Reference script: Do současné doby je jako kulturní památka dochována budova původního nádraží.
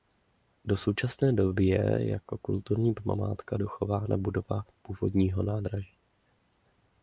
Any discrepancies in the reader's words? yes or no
no